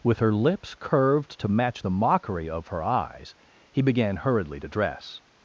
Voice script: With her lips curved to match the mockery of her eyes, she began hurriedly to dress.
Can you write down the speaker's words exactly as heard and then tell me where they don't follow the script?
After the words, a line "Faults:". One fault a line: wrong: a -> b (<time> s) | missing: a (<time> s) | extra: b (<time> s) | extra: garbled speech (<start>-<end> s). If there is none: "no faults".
With her lips curved to match the mockery of her eyes, he began hurriedly to dress.
Faults:
wrong: she -> he (3.7 s)